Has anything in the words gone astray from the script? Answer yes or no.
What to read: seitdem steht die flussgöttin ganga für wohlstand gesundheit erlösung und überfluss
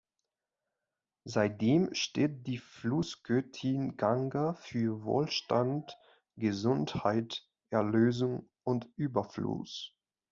no